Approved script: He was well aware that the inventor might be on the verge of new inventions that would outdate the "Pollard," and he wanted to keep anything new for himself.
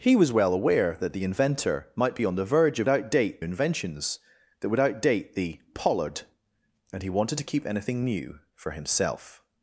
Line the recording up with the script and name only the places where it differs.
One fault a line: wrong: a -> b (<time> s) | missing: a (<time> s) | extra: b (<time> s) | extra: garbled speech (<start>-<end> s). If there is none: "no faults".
wrong: new -> outdate (2.9 s)